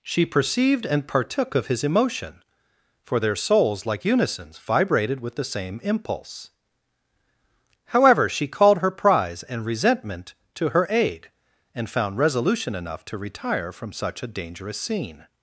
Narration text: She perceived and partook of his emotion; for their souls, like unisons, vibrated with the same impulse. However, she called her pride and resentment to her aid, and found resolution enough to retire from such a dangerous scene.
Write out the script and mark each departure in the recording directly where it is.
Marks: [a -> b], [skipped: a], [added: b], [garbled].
She perceived and partook of his emotion; for their souls, like unisons, vibrated with the same impulse. However, she called her [pride -> prize] and resentment to her aid, and found resolution enough to retire from such a dangerous scene.